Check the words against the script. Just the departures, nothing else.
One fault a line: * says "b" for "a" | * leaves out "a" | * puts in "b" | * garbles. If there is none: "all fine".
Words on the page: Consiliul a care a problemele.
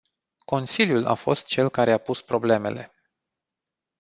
* puts in "fost cel"
* puts in "pus"